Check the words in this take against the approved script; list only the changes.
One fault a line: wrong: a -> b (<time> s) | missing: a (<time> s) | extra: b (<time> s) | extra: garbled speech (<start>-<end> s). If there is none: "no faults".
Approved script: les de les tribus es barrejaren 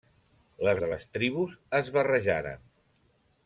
no faults